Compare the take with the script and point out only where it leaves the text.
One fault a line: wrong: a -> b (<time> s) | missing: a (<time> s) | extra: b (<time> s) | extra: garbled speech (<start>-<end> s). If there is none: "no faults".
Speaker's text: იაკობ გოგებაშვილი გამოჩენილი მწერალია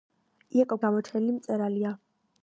missing: გოგებაშვილი (0.8 s)